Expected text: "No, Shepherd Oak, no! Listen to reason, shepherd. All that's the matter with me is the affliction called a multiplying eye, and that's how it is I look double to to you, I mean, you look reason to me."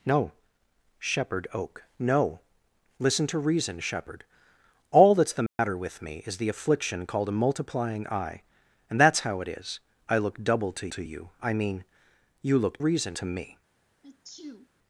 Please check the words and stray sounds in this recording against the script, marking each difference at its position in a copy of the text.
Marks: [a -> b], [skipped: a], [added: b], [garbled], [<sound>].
"No, Shepherd Oak, no! Listen to reason, shepherd. All that's the matter [dropout] with me is the affliction called a multiplying eye, and that's how it is I look double to to you, I mean, you look reason to me." [sneeze]